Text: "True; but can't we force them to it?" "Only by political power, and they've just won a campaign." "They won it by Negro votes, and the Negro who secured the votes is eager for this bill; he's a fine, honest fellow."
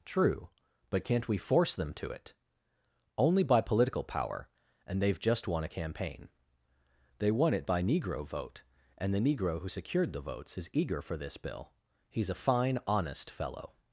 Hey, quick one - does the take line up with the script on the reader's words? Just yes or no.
no